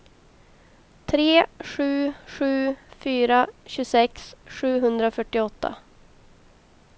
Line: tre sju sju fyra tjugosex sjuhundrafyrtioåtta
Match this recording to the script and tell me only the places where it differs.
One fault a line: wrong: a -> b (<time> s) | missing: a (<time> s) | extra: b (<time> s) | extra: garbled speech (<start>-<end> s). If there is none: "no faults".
no faults